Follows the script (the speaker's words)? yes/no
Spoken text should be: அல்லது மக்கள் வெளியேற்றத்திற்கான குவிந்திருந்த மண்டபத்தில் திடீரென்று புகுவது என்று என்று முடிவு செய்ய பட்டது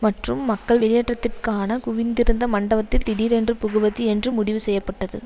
no